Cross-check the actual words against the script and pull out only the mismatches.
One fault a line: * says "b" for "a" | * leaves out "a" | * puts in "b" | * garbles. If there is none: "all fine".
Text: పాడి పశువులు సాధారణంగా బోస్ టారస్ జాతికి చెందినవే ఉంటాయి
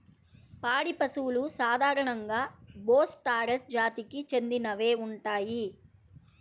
all fine